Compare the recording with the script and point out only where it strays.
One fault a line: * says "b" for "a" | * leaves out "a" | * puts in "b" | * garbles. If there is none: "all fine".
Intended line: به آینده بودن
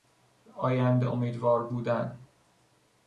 * puts in "امیدوار"